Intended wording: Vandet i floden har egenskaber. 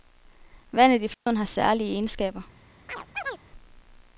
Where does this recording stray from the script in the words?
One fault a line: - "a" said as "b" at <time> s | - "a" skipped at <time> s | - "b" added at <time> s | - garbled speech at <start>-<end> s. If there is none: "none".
- "særlige" added at 1.4 s